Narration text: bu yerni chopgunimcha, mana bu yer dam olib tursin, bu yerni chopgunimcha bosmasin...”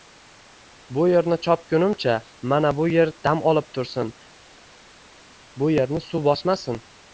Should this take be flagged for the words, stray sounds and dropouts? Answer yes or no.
yes